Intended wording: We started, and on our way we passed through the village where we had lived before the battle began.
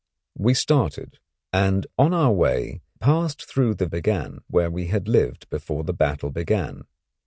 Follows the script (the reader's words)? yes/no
no